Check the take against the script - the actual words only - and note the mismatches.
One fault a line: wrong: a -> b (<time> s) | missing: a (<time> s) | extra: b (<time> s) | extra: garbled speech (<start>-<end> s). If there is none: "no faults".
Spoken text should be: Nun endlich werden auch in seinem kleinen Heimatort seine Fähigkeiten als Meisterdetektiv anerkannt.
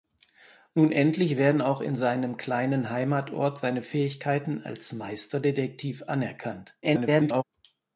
extra: garbled speech (6.8-7.4 s)